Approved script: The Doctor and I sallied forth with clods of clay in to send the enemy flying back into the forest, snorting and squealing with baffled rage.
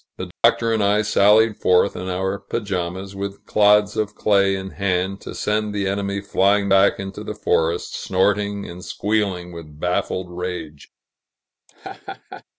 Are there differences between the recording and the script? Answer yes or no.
yes